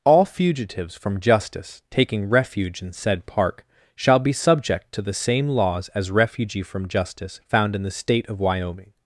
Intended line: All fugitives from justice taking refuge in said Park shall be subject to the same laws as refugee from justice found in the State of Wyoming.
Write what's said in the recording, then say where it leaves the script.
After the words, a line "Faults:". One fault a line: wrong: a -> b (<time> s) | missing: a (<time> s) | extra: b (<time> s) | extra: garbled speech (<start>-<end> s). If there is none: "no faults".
All fugitives from justice taking refuge in said Park shall be subject to the same laws as refugee from justice found in the State of Wyoming.
Faults:
no faults